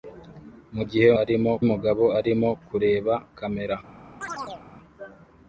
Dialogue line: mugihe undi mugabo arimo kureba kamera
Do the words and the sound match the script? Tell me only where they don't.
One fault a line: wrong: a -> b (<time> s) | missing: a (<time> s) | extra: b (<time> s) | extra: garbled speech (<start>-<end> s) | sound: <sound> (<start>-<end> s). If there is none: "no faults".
wrong: undi -> arimo (1.2 s)
sound: chirp (4.2-4.6 s)